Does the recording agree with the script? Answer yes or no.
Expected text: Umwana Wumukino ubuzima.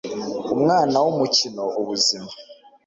yes